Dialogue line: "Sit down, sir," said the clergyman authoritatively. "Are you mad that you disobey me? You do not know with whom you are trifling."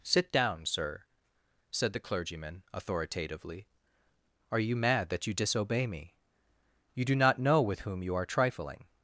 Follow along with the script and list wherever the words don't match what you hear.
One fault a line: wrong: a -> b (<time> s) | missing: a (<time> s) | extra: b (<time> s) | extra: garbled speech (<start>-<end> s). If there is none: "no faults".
no faults